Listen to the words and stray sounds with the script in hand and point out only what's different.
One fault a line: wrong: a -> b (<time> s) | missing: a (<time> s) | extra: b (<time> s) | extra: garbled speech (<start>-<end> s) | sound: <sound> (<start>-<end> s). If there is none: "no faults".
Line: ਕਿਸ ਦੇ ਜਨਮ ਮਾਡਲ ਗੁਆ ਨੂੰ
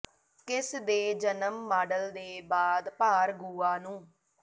extra: ਦੇ ਬਾਅਦ ਭਾਰ (2.1 s)